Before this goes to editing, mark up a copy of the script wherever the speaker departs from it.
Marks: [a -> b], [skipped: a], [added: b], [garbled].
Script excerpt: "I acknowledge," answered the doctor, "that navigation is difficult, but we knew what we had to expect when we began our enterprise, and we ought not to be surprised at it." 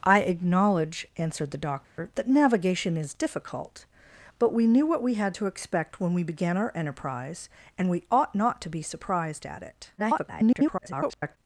"I acknowledge," answered the doctor, "that navigation is difficult, but we knew what we had to expect when we began our enterprise, and we ought not to be surprised at it." [garbled]